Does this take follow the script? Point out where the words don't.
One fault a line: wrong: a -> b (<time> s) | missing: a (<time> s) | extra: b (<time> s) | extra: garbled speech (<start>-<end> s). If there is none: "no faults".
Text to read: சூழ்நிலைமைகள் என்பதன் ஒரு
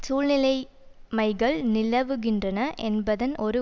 extra: நிலவுகின்றன (1.7 s)